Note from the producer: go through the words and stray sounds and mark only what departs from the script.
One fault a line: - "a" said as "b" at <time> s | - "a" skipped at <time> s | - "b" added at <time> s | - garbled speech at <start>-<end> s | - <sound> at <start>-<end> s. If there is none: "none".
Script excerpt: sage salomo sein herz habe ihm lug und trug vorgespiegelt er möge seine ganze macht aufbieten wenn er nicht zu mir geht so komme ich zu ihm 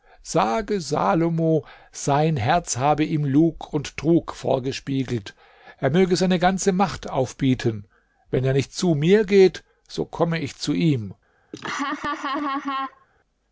- laugh at 11.5-13.1 s